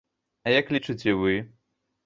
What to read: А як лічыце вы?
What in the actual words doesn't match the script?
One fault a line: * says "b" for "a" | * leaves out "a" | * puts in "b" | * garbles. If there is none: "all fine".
all fine